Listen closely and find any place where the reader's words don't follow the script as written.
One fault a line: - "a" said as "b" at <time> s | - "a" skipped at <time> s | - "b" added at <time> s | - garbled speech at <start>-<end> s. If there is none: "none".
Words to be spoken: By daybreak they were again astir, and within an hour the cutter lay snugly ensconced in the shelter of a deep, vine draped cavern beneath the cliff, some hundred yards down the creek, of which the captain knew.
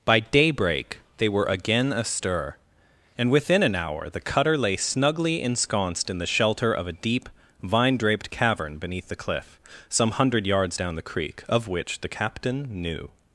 none